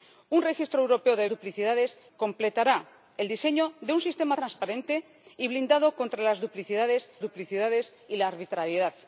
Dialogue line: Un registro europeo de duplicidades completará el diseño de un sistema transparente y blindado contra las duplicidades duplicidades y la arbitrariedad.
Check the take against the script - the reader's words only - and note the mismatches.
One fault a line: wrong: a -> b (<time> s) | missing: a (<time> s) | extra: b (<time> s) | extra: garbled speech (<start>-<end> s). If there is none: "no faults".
no faults